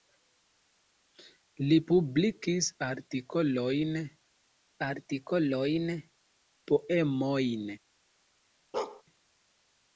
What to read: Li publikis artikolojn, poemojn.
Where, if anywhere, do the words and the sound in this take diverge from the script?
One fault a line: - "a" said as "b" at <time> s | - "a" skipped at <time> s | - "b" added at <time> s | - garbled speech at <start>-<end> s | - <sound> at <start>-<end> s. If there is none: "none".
- "artikolojn" added at 4.8 s
- bark at 8.7-9.0 s